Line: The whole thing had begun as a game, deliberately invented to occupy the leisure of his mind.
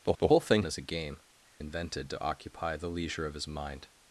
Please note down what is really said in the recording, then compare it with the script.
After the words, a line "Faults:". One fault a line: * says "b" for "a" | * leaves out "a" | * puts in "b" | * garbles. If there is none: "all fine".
The the whole thing as a game, invented to occupy the leisure of his mind.
Faults:
* puts in "the"
* leaves out "had begun"
* leaves out "deliberately"